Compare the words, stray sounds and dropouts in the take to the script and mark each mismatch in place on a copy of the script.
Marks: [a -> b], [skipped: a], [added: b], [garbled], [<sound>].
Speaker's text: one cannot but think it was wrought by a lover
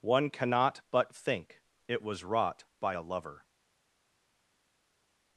one cannot but think it was wrought by a lover